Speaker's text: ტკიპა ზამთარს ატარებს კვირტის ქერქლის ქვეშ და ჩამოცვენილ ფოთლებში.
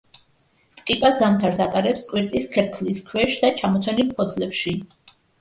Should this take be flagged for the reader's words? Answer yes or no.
no